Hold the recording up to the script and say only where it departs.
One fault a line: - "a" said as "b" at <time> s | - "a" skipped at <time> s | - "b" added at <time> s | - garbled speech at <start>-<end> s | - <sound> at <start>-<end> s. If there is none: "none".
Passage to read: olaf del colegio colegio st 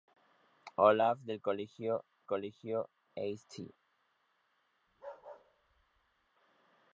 - bark at 4.9-6.3 s